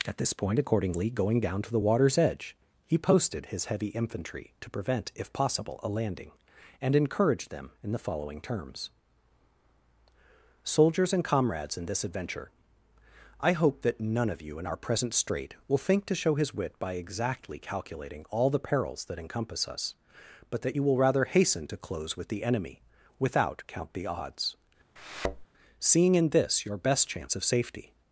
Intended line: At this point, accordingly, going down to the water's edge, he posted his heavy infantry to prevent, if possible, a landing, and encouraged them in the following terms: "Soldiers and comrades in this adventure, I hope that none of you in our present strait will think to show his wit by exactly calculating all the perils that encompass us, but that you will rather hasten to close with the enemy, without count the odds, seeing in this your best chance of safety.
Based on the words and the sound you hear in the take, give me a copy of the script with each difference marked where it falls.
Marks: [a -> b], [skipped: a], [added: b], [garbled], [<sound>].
At this point, accordingly, going down to the water's edge, he posted his heavy infantry to prevent, if possible, a landing, and encouraged them in the following terms: "Soldiers and comrades in this adventure, I hope that none of you in our present strait will think to show his wit by exactly calculating all the perils that encompass us, but that you will rather hasten to close with the enemy, without count the odds, [thud] seeing in this your best chance of safety.